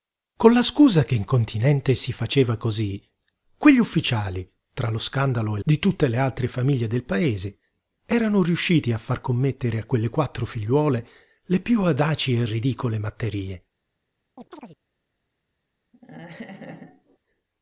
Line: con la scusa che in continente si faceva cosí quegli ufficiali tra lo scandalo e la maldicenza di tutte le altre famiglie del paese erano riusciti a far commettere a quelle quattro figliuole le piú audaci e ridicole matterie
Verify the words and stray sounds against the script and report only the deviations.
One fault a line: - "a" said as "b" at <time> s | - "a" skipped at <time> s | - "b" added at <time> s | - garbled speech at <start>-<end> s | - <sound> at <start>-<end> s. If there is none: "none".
- "la maldicenza" skipped at 5.6 s
- chirp at 14.4-14.8 s
- laugh at 15.9-17.2 s